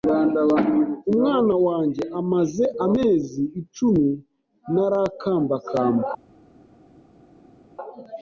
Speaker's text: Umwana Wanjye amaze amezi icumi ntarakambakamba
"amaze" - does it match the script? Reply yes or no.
yes